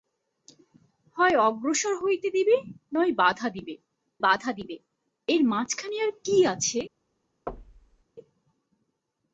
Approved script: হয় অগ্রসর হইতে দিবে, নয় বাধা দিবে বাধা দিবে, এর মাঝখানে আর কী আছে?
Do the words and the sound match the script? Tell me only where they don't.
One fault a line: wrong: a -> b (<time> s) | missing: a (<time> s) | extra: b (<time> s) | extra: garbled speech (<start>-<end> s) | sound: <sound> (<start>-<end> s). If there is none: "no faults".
sound: thud (7.5-8.0 s)